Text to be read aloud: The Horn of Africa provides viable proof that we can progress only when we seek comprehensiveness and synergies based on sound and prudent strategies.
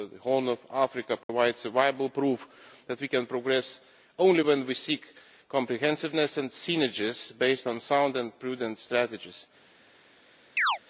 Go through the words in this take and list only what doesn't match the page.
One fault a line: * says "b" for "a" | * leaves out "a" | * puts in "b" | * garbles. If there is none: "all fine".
all fine